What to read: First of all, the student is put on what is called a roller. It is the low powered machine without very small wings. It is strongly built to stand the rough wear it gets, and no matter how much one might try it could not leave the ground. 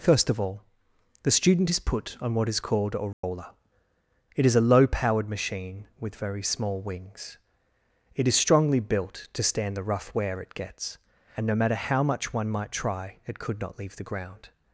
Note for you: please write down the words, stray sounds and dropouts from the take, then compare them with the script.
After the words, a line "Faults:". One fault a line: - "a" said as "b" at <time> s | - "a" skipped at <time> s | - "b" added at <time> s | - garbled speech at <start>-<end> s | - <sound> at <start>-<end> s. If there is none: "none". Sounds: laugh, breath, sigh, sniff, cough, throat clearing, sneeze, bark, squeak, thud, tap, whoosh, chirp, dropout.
First of all, the student is put on what is called a roller. It is a low powered machine with very small wings. It is strongly built to stand the rough wear it gets, and no matter how much one might try it could not leave the ground.
Faults:
- dropout at 3.1-3.2 s
- "the" said as "a" at 4.5 s
- "without" said as "with" at 6.0 s